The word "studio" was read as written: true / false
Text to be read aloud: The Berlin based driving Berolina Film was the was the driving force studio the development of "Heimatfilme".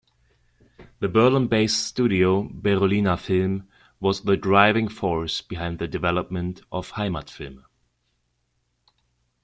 false